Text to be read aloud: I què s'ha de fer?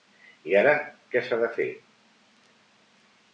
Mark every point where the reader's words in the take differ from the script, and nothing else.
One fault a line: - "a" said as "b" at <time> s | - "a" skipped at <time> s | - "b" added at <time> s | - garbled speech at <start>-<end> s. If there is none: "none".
- "ara" added at 0.6 s